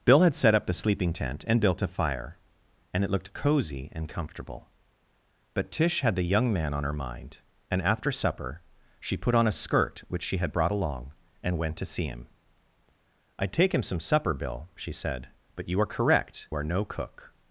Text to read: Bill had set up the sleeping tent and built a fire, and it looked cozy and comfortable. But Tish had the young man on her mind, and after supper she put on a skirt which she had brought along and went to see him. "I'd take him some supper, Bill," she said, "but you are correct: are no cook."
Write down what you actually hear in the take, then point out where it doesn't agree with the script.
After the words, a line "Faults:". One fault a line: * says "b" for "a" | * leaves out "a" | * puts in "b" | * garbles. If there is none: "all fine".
Bill had set up the sleeping tent and built a fire, and it looked cozy and comfortable. But Tish had the young man on her mind, and after supper she put on a skirt which she had brought along and went to see him. "I'd take him some supper, Bill," she said, "but you are correct: are no cook."
Faults:
all fine